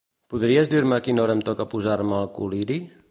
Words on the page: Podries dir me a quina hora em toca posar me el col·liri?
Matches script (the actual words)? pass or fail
pass